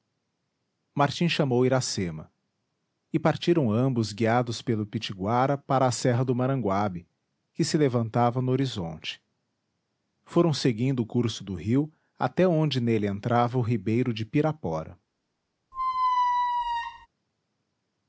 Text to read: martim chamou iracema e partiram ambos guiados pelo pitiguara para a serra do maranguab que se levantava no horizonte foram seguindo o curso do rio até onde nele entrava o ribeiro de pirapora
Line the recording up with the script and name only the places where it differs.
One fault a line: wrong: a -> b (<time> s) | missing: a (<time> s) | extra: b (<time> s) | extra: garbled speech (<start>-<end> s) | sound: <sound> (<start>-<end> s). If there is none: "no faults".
sound: squeak (15.7-17.1 s)